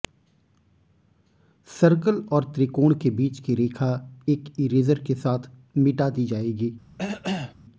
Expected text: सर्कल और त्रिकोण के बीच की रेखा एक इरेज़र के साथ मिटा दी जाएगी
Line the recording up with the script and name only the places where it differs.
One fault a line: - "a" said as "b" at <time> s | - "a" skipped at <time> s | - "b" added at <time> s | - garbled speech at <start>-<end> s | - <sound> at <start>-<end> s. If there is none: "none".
- cough at 7.0-7.5 s